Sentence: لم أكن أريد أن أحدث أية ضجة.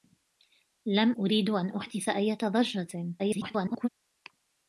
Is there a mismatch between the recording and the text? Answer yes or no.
yes